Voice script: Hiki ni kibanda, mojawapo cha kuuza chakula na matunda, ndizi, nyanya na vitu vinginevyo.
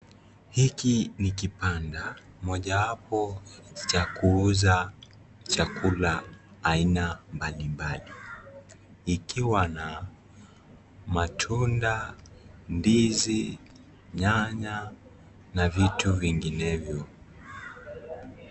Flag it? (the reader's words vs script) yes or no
yes